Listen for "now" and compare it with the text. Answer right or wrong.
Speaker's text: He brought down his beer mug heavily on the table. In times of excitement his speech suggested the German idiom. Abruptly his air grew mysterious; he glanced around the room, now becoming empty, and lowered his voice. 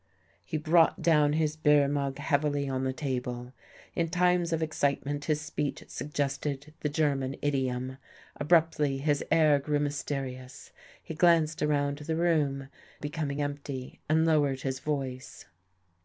wrong